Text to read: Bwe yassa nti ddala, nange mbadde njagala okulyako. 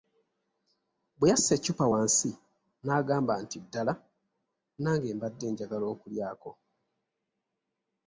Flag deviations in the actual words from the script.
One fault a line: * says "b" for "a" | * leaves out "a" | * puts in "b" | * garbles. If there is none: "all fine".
* puts in "eccupa wansi n'agamba"